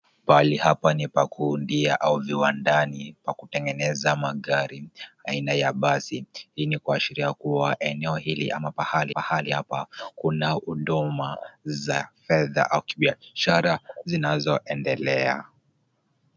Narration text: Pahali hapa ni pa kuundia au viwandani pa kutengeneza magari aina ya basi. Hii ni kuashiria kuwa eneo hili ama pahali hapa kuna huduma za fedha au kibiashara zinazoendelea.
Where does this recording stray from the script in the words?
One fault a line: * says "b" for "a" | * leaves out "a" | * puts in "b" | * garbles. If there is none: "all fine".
* puts in "pahali"